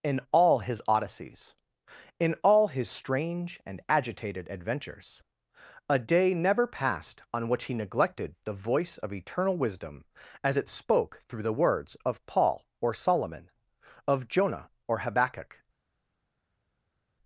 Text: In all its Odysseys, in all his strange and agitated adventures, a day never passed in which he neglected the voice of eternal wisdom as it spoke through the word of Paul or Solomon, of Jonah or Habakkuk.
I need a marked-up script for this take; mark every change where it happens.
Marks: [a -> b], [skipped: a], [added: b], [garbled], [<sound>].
In all [its -> his] Odysseys, in all his strange and agitated adventures, a day never passed [in -> on] which he neglected the voice of eternal wisdom as it spoke through the [word -> words] of Paul or Solomon, of Jonah or Habakkuk.